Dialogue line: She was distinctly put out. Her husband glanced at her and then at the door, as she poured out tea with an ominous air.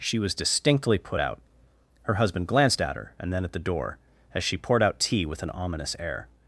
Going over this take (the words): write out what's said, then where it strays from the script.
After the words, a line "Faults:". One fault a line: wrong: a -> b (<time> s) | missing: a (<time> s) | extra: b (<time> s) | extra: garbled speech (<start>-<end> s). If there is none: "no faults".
She was distinctly put out. Her husband glanced at her and then at the door, as she poured out tea with an ominous air.
Faults:
no faults